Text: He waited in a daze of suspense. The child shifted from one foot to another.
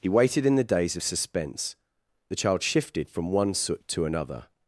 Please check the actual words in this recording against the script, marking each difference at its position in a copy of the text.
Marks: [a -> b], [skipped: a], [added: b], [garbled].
He waited in [a -> the] daze of suspense. The child shifted from one [foot -> soot] to another.